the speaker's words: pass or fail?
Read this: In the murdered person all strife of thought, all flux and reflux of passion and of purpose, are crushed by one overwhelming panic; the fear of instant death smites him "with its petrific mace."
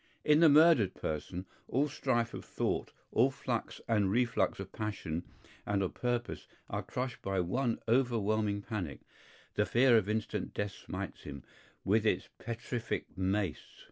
pass